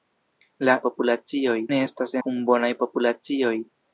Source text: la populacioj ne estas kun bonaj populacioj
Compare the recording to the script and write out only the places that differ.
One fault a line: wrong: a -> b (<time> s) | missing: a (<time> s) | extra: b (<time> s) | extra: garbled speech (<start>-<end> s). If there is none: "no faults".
no faults